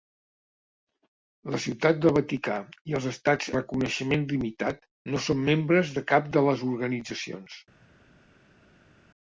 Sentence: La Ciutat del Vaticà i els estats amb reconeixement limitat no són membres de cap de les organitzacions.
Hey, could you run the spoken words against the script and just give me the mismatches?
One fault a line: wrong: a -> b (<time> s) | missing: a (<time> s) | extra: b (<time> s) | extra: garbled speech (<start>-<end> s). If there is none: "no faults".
missing: amb (3.5 s)